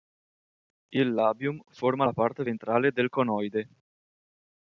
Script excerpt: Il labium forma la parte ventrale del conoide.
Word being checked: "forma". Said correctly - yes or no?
yes